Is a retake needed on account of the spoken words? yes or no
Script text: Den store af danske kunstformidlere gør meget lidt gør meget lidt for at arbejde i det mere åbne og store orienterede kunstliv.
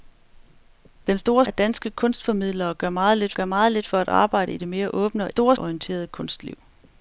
no